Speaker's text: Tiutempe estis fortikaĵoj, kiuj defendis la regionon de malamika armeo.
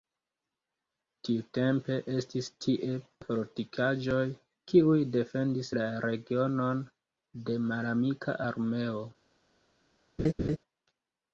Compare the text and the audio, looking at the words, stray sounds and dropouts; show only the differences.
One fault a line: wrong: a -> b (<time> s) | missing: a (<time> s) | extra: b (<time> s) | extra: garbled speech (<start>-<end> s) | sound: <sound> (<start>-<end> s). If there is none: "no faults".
extra: tie (2.6 s)
sound: laugh (10.2-10.6 s)